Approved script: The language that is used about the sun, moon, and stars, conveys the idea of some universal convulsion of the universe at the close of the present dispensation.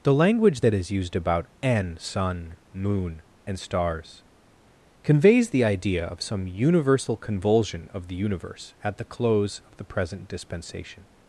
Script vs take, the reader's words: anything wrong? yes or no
yes